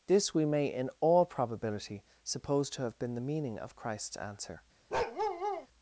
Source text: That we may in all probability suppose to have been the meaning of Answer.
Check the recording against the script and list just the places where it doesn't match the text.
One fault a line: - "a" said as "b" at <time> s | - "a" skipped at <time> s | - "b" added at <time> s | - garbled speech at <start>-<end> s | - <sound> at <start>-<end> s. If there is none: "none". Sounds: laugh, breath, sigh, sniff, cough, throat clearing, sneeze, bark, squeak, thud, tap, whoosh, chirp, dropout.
- "That" said as "This" at 0.1 s
- "Christ's" added at 3.7 s
- bark at 4.9-5.7 s